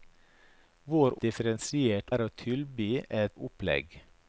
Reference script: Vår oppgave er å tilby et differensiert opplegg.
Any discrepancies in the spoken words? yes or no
yes